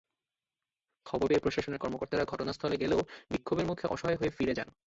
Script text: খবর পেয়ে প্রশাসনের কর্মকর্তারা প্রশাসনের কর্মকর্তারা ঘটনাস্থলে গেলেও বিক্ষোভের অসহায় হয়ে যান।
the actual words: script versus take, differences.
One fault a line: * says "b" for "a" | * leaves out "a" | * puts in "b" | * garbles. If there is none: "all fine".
* leaves out "প্রশাসনের কর্মকর্তারা"
* puts in "মুখে"
* puts in "ফিরে"